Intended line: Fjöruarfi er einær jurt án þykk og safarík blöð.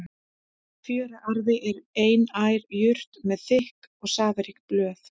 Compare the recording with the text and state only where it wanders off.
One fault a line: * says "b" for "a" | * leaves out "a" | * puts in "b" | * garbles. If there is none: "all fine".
* says "með" for "án"